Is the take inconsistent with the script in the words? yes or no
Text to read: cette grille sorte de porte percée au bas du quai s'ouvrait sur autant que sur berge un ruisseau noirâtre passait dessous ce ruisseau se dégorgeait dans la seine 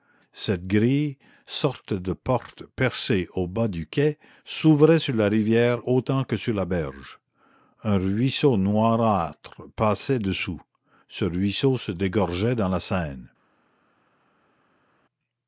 yes